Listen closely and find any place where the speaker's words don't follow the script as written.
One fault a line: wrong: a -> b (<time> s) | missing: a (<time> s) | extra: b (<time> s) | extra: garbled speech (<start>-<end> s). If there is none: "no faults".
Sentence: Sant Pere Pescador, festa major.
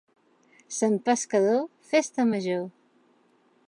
missing: Pere (0.9 s)